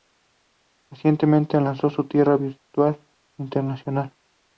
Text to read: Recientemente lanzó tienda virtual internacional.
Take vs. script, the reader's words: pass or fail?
fail